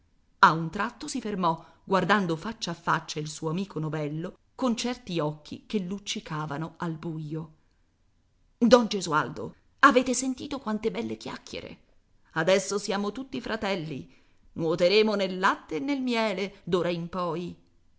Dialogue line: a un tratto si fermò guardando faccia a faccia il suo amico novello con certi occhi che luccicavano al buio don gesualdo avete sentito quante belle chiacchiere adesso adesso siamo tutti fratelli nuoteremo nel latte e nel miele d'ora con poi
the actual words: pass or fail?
fail